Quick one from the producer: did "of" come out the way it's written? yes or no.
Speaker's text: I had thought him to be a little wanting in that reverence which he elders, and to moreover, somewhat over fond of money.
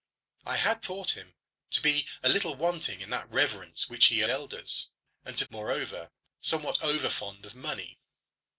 yes